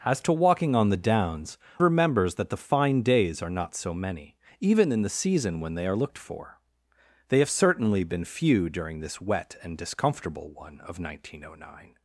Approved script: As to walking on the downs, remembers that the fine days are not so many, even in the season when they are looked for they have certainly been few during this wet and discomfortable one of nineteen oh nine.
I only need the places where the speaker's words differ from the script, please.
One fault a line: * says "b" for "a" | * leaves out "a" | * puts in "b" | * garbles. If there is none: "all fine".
all fine